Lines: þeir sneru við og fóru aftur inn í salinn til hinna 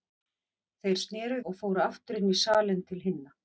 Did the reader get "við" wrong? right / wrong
wrong